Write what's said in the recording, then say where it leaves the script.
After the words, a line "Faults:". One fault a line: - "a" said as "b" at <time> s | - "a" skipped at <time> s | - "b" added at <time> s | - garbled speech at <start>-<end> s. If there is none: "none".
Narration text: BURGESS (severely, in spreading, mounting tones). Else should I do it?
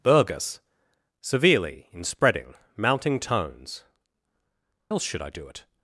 BURGESS (severely, in spreading, mounting tones). Else should I do it?
Faults:
none